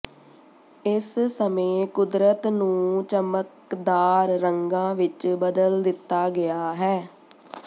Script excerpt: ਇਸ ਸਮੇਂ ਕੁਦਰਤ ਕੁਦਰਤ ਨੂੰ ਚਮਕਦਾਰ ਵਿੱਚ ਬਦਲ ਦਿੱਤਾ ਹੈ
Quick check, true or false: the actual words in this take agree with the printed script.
false